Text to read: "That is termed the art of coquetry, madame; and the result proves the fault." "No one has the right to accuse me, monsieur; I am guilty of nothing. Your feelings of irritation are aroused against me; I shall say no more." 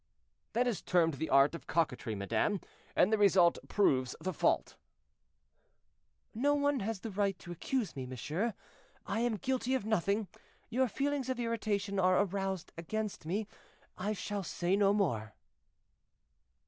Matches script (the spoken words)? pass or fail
pass